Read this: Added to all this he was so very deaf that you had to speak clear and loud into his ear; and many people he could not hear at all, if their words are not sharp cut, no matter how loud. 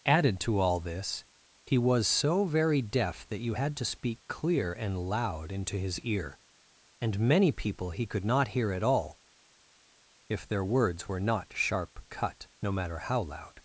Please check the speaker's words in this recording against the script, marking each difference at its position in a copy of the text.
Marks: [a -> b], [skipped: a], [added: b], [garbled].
Added to all this he was so very deaf that you had to speak clear and loud into his ear; and many people he could not hear at all, if their words [are -> were] not sharp cut, no matter how loud.